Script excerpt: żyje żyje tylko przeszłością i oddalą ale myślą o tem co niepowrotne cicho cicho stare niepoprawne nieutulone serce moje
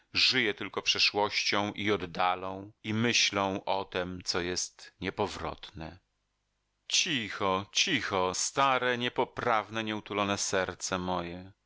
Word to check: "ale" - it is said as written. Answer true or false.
false